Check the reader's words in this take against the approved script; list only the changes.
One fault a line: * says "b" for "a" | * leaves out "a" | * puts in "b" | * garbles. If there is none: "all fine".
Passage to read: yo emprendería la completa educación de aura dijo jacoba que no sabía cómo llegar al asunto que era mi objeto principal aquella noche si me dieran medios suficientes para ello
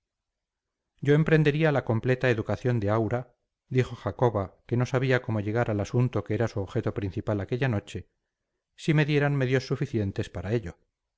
* says "su" for "mi"